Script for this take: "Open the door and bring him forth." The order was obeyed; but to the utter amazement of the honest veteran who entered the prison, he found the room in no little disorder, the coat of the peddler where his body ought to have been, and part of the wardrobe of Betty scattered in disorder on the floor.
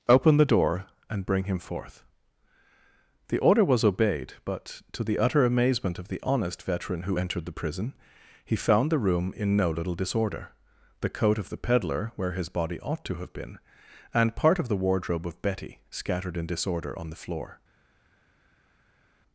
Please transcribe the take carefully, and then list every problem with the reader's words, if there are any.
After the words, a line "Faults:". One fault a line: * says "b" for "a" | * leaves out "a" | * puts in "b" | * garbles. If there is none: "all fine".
"Open the door and bring him forth." The order was obeyed; but to the utter amazement of the honest veteran who entered the prison, he found the room in no little disorder, the coat of the peddler where his body ought to have been, and part of the wardrobe of Betty scattered in disorder on the floor.
Faults:
all fine